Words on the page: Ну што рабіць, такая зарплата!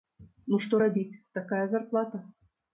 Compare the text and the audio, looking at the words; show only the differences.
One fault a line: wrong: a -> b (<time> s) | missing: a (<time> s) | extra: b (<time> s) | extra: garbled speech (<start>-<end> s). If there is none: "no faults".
no faults